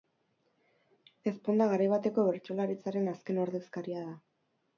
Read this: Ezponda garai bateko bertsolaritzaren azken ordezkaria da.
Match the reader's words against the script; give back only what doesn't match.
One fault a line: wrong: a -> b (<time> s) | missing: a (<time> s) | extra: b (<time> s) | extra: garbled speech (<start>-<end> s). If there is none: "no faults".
no faults